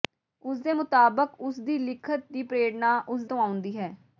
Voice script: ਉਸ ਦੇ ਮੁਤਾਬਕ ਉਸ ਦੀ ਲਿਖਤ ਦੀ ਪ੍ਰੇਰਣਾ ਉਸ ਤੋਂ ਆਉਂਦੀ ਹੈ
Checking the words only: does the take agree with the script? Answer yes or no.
yes